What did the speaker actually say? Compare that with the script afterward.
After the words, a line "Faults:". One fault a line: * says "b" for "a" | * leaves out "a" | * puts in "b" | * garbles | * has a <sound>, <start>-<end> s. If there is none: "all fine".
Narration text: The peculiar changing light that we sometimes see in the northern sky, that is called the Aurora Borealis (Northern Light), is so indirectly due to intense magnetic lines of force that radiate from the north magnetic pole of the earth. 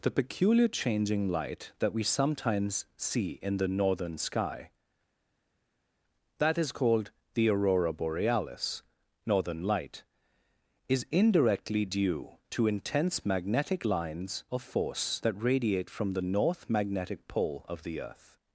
The peculiar changing light that we sometimes see in the northern sky, that is called the Aurora Borealis (Northern Light), is indirectly due to intense magnetic lines of force that radiate from the north magnetic pole of the earth.
Faults:
* leaves out "so"